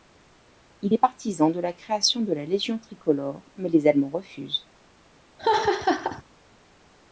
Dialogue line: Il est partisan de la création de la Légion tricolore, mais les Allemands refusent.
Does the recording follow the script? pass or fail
pass